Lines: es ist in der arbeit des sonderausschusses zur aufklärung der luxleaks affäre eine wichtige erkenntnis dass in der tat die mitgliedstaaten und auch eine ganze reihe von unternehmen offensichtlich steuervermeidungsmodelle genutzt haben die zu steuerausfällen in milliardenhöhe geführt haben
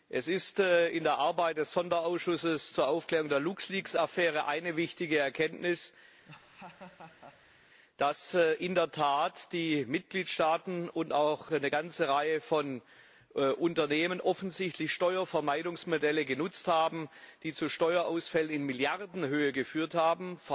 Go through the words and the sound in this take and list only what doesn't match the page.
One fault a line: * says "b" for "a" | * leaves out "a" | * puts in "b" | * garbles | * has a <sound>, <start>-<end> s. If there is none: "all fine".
* has a laugh, 6.3-7.6 s